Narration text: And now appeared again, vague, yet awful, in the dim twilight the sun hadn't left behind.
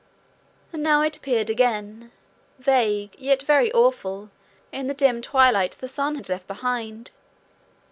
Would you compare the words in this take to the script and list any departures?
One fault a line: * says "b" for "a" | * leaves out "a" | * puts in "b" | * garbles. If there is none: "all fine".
* puts in "it"
* puts in "very"
* says "had" for "hadn't"